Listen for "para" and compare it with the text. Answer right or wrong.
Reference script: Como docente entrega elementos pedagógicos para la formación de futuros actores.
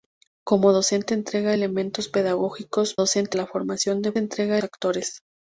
wrong